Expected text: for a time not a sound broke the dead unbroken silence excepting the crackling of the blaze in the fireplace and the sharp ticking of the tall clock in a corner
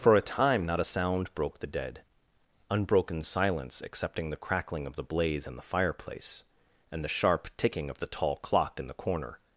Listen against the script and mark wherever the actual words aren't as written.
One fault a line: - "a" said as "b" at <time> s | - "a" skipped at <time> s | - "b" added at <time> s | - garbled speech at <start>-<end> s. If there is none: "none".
- "a" said as "the" at 8.9 s